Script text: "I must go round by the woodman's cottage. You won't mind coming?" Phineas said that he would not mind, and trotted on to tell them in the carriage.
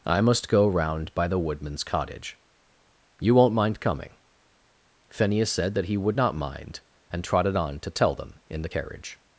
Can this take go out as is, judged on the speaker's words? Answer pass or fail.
pass